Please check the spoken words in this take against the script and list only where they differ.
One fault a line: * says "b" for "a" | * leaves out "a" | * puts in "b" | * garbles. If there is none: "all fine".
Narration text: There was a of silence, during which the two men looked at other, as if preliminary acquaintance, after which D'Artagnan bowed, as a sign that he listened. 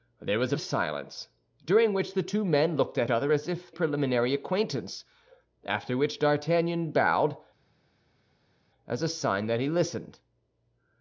all fine